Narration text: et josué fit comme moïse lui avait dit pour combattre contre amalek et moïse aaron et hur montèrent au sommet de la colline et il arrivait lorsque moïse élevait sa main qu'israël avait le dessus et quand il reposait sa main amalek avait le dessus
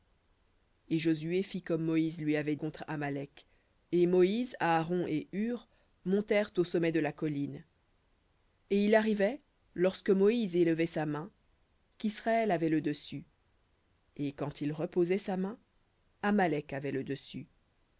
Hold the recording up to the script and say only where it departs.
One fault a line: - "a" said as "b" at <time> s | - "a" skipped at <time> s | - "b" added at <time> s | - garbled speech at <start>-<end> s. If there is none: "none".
- "dit pour combattre" skipped at 2.5 s